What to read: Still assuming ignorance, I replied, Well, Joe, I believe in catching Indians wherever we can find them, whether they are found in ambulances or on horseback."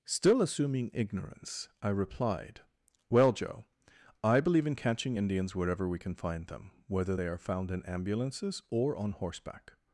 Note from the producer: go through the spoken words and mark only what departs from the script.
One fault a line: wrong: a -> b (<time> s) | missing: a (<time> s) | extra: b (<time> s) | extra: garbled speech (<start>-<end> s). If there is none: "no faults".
no faults